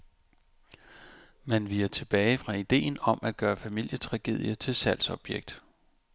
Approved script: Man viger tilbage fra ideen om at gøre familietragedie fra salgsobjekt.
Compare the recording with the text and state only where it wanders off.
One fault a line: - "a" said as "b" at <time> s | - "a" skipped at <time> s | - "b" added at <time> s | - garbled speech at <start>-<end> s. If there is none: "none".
- "fra" said as "til" at 4.5 s